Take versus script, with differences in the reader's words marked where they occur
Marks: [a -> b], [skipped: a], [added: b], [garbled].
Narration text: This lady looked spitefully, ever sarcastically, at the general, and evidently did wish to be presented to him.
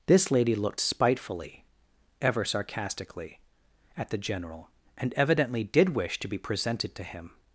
This lady looked spitefully, ever sarcastically, at the general, and evidently did wish to be presented to him.